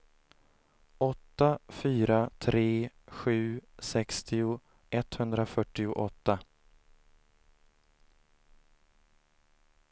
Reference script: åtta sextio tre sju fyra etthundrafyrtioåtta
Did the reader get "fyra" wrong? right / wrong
wrong